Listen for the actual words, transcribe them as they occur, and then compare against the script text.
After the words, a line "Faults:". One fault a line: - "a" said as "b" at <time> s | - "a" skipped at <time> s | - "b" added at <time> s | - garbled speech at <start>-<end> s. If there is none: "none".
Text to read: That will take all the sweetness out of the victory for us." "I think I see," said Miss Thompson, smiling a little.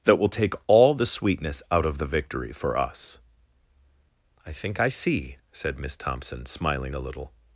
That will take all the sweetness out of the victory for us." "I think I see," said Miss Thompson, smiling a little.
Faults:
none